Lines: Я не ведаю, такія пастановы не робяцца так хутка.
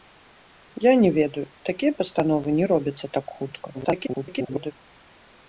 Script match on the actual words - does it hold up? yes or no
no